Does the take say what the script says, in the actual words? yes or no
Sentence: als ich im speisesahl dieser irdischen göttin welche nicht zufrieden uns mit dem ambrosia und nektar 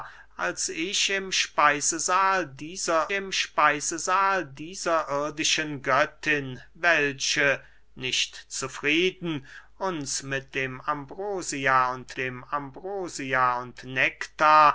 no